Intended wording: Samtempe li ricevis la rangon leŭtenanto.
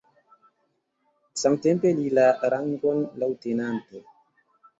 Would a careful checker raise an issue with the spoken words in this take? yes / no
yes